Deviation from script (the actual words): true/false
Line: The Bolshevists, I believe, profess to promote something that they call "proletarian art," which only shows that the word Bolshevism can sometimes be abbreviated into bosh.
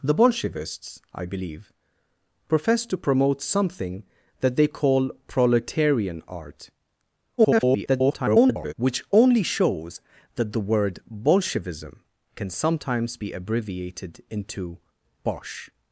true